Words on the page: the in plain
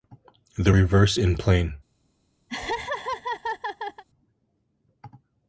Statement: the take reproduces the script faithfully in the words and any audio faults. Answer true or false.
false